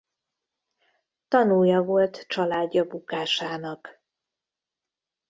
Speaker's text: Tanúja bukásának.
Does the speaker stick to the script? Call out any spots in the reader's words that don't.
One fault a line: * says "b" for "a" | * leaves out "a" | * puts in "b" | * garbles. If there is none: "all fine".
* puts in "volt családja"